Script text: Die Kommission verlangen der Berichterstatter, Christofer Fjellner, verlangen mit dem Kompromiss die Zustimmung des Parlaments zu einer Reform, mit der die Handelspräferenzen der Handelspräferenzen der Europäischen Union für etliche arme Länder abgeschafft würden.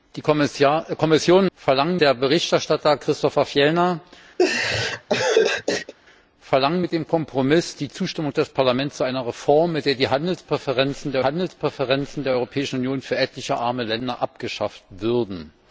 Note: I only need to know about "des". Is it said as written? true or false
true